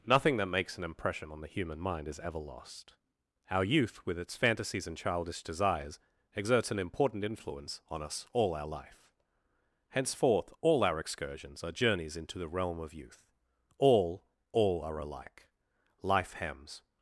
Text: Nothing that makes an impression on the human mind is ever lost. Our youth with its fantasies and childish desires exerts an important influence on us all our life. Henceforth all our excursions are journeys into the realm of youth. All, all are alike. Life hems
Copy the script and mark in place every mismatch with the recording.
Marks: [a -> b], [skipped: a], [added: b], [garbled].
Nothing that makes an impression on the human mind is ever lost. Our youth with its fantasies and childish desires exerts an important influence on us all our life. Henceforth all our excursions are journeys into the realm of youth. All, all are alike. Life hems